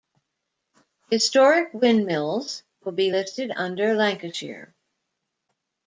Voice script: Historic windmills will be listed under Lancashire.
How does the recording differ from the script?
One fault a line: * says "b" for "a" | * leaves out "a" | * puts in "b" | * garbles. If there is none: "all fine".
all fine